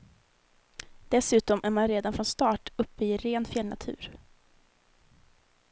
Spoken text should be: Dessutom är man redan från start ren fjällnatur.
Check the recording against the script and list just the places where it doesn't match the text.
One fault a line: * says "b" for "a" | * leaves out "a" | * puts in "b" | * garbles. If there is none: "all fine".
* puts in "uppe i"